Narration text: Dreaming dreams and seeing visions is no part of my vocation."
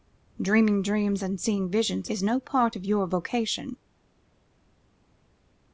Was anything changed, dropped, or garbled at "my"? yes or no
yes